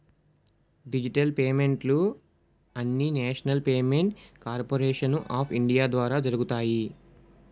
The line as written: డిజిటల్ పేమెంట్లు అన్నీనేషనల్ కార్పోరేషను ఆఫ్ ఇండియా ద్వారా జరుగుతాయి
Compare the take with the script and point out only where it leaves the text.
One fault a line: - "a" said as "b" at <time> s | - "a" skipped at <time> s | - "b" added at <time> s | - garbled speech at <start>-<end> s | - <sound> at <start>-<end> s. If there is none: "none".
- "పేమెంట్" added at 3.6 s